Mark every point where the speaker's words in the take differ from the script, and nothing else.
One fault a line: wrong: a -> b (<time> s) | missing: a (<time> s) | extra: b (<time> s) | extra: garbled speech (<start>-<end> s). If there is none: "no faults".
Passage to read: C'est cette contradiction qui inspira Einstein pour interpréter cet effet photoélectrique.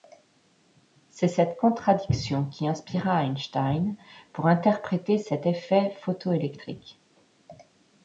no faults